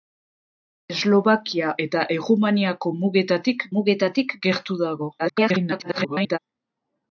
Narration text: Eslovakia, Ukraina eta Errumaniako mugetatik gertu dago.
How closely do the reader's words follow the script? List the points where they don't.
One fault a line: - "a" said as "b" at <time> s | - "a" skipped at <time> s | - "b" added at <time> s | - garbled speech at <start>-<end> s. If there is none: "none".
- "Ukraina" skipped at 1.8 s
- "mugetatik" added at 3.8 s
- garbled speech at 5.2-6.4 s